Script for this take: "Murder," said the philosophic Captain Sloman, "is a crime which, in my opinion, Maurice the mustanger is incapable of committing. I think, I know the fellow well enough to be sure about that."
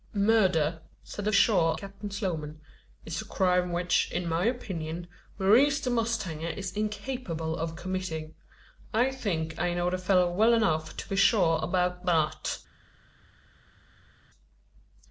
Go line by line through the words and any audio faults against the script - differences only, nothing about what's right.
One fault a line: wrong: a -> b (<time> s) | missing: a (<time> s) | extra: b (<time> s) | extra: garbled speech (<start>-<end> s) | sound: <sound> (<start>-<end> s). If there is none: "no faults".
wrong: philosophic -> sure (1.3 s)